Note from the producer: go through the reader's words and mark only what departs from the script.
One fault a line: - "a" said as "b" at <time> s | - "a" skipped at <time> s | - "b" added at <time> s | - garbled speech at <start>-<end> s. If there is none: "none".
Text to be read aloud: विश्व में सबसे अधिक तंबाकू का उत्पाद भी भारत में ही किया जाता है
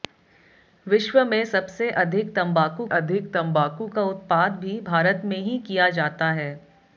- "अधिक तंबाकू" added at 3.0 s